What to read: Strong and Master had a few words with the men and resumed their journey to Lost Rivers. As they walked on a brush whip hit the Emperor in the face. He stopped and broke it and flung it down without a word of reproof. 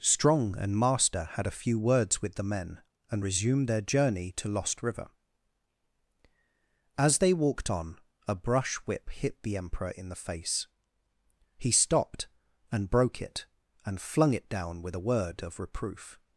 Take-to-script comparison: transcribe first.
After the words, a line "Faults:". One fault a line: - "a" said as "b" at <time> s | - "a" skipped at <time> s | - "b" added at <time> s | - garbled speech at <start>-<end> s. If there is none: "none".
Strong and Master had a few words with the men and resumed their journey to Lost River. As they walked on a brush whip hit the Emperor in the face. He stopped and broke it and flung it down with a word of reproof.
Faults:
- "Rivers" said as "River" at 4.8 s
- "without" said as "with" at 14.8 s